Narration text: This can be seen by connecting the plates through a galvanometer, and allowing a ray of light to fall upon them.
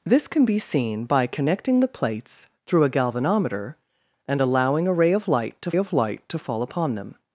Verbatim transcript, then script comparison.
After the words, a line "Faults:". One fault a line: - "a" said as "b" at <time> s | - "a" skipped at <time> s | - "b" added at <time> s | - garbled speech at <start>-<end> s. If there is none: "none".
This can be seen by connecting the plates through a galvanometer, and allowing a ray of light to of light to fall upon them.
Faults:
- "of light to" added at 5.7 s